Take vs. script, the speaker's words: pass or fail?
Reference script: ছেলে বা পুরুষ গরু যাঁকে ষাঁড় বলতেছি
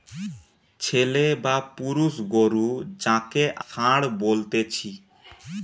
pass